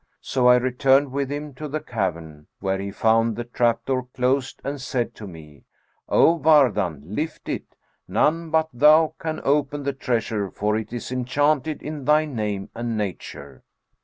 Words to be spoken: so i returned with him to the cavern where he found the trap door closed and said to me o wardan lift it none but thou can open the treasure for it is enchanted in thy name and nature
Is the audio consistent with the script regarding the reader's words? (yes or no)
yes